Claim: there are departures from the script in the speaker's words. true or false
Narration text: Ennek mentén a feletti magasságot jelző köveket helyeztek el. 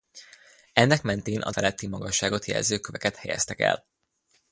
false